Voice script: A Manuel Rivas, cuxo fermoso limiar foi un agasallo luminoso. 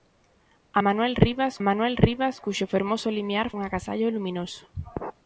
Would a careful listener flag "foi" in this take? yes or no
yes